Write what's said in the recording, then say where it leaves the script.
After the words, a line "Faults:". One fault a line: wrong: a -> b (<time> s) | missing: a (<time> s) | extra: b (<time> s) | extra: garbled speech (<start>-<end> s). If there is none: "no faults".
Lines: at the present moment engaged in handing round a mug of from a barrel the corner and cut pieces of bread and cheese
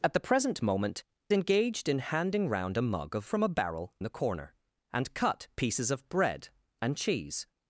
at the present moment engaged in handing round a mug of from a barrel the corner and cut pieces of bread and cheese
Faults:
no faults